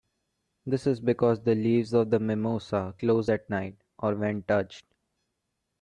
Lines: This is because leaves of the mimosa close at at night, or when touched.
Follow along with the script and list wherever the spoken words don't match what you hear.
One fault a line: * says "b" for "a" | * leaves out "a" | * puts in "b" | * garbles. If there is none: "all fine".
* puts in "the"
* leaves out "at"